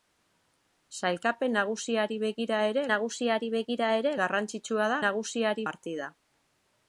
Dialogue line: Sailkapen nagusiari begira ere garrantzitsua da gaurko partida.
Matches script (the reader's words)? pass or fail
fail